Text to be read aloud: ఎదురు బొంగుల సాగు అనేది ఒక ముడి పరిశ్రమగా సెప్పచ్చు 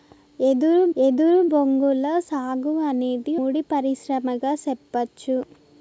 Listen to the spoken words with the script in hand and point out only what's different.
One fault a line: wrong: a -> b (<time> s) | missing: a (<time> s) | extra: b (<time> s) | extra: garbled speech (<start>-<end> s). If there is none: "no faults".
extra: ఎదురు (1.0 s)
missing: ఒక (3.3 s)